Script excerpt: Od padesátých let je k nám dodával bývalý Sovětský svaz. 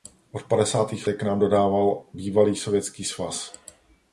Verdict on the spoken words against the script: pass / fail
fail